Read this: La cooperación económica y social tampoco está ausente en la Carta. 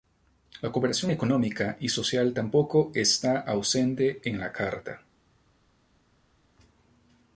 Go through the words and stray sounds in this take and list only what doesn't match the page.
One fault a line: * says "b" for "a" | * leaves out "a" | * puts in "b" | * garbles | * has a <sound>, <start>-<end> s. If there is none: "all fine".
all fine